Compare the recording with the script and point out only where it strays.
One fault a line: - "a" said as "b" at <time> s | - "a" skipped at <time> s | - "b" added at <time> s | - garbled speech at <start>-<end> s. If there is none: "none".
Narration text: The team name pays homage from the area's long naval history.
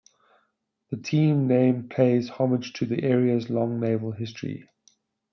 - "from" said as "to" at 2.7 s